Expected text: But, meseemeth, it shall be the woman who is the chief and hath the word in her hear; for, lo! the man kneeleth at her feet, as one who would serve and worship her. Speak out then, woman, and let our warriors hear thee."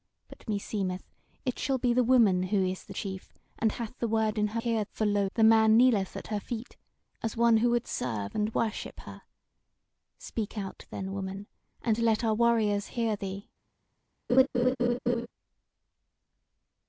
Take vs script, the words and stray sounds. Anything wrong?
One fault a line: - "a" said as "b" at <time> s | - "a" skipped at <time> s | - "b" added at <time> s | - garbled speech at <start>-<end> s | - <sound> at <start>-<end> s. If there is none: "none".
- laugh at 14.3-15.3 s